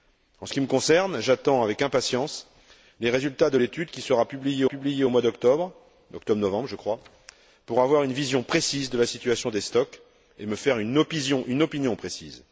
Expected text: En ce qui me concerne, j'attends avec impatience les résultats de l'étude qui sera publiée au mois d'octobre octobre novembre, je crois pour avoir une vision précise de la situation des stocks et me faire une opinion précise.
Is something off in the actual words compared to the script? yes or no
yes